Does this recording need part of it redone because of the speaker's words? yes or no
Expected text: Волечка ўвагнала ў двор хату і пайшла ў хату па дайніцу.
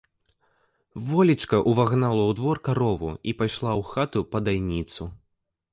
yes